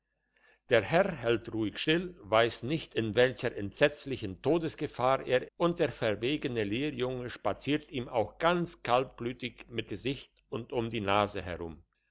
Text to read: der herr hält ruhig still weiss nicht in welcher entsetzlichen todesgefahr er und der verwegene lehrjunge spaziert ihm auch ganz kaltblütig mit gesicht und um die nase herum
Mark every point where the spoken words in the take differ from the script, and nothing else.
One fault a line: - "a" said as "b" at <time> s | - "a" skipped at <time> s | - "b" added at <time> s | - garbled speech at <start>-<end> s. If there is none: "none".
none